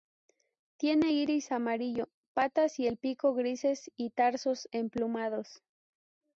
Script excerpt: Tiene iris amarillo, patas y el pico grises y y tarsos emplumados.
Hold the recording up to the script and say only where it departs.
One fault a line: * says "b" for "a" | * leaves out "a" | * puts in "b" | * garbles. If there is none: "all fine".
* leaves out "y"